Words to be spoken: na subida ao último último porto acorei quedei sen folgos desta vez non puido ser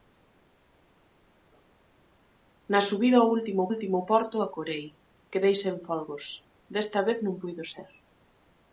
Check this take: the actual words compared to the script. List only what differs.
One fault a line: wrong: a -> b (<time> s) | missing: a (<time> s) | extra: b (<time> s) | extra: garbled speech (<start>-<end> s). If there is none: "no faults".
no faults